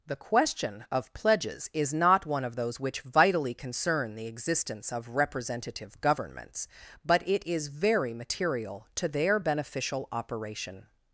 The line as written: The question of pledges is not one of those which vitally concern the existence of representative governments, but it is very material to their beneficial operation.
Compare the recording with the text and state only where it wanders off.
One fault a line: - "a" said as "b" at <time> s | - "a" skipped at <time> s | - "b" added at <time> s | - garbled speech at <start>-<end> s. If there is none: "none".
none